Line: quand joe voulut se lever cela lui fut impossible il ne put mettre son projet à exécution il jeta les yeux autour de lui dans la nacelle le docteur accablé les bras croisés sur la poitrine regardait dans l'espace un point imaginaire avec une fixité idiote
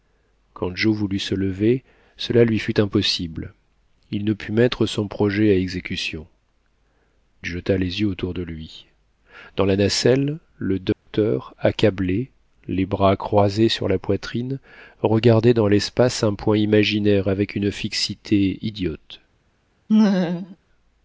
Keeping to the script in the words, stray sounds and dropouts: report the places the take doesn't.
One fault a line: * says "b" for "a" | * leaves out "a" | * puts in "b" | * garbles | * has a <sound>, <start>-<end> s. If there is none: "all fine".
* leaves out "il"
* has a dropout, 10.9-11.1 s
* has a laugh, 19.9-20.6 s